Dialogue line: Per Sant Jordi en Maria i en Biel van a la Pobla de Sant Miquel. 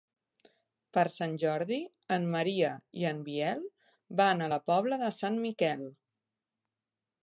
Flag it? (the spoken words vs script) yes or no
no